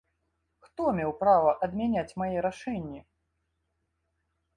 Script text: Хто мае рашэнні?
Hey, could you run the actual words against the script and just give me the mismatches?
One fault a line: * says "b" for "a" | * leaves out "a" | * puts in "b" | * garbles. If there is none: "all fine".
* puts in "меў права адмяняць"